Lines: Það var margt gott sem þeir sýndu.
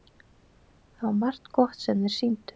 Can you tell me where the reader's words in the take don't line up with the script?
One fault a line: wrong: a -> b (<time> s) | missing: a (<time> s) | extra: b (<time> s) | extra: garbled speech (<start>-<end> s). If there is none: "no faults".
no faults